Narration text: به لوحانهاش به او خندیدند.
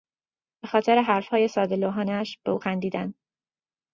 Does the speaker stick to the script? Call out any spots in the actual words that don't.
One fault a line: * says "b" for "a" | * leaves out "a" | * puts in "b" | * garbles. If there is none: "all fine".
* puts in "خاطر حرفهای ساده"